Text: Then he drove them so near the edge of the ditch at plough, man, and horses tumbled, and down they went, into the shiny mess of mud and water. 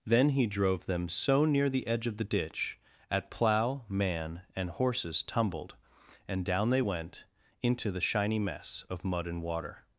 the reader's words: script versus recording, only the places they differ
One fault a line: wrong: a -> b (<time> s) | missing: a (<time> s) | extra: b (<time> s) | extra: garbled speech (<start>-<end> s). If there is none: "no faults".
no faults